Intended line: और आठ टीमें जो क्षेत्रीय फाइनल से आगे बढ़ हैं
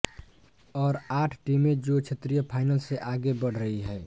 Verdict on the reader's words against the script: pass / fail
fail